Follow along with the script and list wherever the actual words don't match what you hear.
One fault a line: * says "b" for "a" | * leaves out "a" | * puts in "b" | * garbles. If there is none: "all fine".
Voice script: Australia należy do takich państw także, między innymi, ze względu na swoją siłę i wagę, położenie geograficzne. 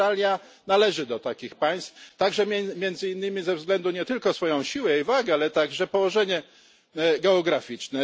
* puts in "nie tylko"
* puts in "ale także"